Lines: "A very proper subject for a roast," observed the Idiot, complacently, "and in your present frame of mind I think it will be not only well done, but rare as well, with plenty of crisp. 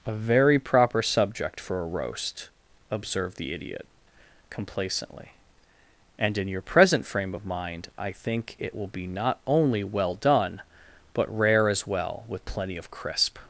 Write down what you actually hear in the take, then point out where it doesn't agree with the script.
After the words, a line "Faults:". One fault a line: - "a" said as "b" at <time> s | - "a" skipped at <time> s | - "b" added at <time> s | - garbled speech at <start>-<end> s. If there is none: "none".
"A very proper subject for a roast," observed the Idiot, complacently, "and in your present frame of mind I think it will be not only well done, but rare as well, with plenty of crisp.
Faults:
none